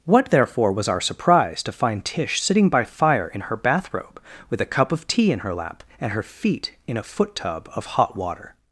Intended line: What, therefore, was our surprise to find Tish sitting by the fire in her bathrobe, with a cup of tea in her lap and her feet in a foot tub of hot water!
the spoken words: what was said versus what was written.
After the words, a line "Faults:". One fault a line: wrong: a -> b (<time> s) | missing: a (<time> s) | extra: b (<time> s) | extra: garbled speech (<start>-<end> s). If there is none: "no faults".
What, therefore, was our surprise to find Tish sitting by fire in her bathrobe, with a cup of tea in her lap and her feet in a foot tub of hot water!
Faults:
missing: the (2.8 s)